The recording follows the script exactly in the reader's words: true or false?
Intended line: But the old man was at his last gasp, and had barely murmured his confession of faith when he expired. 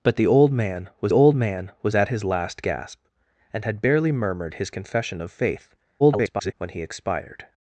false